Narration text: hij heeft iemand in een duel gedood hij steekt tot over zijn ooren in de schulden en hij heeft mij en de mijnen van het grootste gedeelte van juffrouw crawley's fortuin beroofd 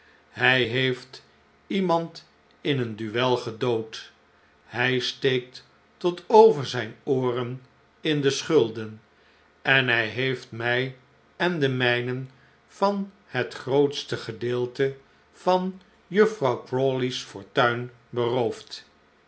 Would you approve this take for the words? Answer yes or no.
yes